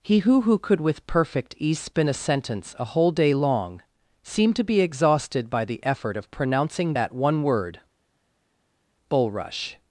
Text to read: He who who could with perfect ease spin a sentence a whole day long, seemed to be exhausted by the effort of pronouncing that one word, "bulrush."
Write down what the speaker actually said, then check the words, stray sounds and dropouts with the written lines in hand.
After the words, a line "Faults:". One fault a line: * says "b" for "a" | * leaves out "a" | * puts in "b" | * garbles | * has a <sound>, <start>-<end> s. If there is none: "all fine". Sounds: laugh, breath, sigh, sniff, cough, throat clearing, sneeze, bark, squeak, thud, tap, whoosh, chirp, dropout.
He who who could with perfect ease spin a sentence a whole day long, seemed to be exhausted by the effort of pronouncing that one word, "bulrush."
Faults:
all fine